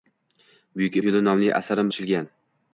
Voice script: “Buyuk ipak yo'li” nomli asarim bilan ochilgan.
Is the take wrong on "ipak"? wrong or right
wrong